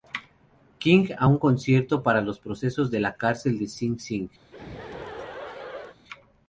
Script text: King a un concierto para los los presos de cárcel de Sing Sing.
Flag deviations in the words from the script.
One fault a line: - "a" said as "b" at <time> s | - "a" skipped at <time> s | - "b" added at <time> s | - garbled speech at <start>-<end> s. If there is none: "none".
- "los" skipped at 2.4 s
- "la" added at 3.0 s